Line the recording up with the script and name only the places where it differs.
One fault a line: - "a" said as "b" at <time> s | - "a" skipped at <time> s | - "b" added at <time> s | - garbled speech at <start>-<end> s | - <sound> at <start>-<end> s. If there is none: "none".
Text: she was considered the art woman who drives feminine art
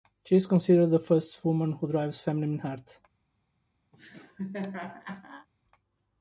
- "was" said as "is" at 0.3 s
- "art" said as "first" at 1.0 s
- laugh at 3.9-5.5 s